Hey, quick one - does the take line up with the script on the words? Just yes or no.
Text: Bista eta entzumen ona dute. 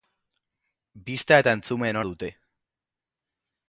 no